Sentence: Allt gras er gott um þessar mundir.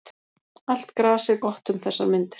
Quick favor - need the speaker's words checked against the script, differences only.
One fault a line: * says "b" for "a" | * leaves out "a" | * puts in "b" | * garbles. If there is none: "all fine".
all fine